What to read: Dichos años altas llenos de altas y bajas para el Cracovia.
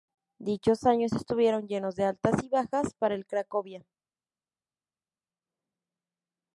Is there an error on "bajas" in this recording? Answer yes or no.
no